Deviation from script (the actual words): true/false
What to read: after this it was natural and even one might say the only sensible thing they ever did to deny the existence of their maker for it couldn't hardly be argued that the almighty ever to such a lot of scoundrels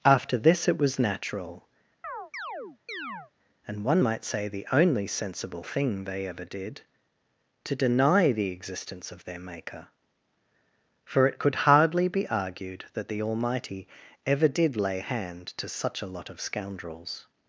true